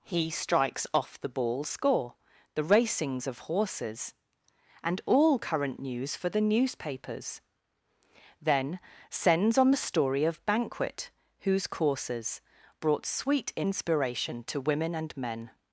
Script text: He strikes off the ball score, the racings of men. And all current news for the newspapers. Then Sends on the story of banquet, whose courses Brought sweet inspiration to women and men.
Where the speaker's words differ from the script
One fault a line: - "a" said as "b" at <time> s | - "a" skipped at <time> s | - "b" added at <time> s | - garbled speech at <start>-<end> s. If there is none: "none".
- "men" said as "horses" at 3.5 s